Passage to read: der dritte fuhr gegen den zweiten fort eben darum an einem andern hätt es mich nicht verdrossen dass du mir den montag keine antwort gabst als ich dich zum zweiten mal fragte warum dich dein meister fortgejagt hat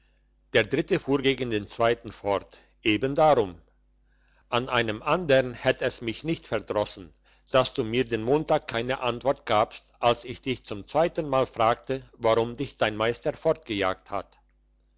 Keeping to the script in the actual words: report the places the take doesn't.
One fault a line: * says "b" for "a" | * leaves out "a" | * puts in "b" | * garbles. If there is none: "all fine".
all fine